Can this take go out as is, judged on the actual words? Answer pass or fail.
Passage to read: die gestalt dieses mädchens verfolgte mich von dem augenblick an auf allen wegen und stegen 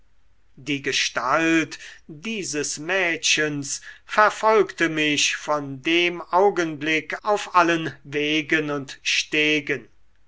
fail